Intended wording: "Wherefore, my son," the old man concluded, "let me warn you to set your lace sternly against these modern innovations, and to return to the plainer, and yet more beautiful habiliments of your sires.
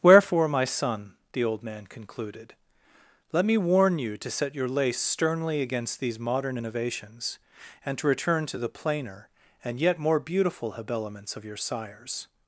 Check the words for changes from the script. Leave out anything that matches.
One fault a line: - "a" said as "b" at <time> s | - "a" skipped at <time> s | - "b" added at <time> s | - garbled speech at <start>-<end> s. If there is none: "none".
none